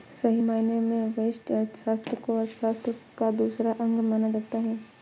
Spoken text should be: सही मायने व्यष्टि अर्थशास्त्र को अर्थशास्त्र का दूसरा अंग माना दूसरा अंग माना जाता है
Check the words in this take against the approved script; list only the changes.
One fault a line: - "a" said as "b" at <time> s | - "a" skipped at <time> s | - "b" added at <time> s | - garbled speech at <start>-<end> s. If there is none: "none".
- "में" added at 0.8 s
- "दूसरा अंग माना" skipped at 4.3 s